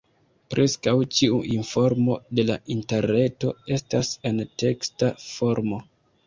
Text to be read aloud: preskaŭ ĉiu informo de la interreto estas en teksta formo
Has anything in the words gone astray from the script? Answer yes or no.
no